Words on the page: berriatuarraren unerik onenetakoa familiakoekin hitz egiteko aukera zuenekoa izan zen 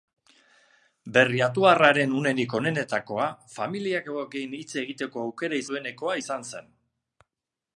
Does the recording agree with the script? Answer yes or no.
yes